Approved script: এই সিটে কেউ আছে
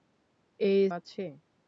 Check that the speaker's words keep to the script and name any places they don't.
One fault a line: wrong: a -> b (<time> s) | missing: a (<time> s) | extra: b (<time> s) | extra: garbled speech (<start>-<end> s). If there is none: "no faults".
missing: সিটে কেউ (0.8 s)